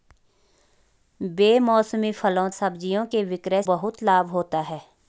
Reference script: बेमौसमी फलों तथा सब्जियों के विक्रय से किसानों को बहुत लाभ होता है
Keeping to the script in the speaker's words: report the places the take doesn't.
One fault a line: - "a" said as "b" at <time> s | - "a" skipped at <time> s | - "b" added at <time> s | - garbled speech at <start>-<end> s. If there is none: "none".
- "तथा" skipped at 2.5 s
- "से किसानों को" skipped at 3.6 s